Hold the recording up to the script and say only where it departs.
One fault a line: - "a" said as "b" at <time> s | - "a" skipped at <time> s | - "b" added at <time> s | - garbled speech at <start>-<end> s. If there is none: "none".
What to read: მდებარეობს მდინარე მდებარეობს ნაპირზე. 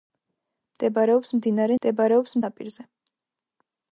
none